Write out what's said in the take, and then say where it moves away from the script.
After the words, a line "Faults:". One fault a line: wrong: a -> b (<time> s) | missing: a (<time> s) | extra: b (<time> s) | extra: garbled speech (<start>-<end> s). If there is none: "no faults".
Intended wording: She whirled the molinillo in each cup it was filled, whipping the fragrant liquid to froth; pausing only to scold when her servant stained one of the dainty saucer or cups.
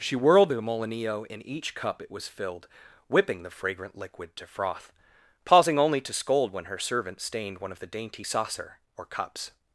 She whirled the molinillo in each cup it was filled, whipping the fragrant liquid to froth; pausing only to scold when her servant stained one of the dainty saucer or cups.
Faults:
no faults